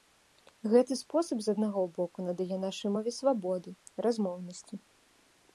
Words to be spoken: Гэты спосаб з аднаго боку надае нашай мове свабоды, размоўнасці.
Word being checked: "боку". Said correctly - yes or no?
yes